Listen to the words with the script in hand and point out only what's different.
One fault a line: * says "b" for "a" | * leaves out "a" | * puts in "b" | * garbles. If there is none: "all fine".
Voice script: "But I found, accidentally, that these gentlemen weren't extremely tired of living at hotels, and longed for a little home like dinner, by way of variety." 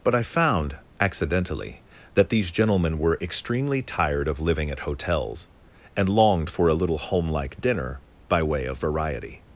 * says "were" for "weren't"